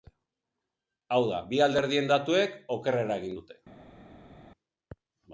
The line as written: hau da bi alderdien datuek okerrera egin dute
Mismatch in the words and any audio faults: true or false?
false